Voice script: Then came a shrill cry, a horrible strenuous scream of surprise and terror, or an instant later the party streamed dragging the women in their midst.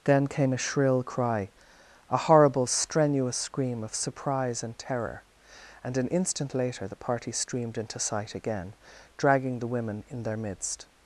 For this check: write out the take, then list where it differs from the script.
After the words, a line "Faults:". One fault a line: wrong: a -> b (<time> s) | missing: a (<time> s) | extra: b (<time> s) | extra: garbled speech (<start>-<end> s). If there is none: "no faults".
Then came a shrill cry, a horrible strenuous scream of surprise and terror, and an instant later the party streamed into sight again, dragging the women in their midst.
Faults:
wrong: or -> and (5.8 s)
extra: into sight again (7.8 s)